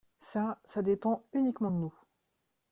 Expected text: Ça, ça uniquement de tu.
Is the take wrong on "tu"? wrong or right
wrong